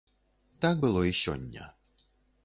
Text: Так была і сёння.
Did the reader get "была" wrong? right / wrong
wrong